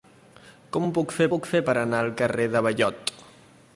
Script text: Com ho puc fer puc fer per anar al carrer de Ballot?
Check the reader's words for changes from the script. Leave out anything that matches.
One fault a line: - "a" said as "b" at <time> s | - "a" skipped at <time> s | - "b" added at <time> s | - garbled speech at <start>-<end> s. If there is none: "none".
none